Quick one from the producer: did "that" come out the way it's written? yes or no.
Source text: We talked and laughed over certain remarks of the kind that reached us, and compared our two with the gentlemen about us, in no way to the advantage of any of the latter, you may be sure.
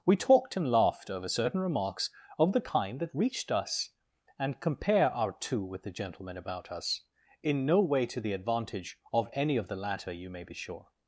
yes